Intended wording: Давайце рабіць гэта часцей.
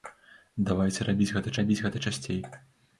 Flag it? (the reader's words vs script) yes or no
yes